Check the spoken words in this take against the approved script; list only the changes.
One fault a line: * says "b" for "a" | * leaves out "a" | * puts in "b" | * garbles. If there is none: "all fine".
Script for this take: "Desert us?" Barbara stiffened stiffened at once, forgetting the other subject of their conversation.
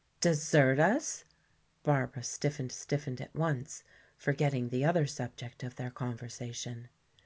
all fine